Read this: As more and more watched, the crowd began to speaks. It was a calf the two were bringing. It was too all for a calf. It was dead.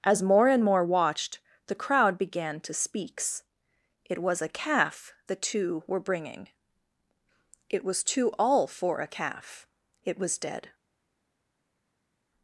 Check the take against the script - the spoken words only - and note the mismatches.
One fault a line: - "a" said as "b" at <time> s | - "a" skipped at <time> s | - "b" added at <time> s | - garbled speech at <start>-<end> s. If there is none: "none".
none